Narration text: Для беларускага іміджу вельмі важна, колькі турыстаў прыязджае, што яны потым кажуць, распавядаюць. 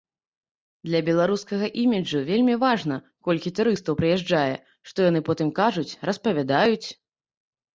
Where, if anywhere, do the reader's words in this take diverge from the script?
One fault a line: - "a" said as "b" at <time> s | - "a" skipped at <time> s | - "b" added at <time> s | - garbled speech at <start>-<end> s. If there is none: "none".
none